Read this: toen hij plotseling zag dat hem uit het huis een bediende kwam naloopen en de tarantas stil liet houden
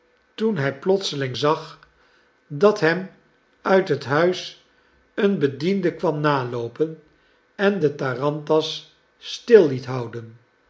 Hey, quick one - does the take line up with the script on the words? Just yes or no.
yes